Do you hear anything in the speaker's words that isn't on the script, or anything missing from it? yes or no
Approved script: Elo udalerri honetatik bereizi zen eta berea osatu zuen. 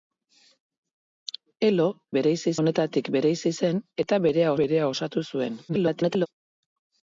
yes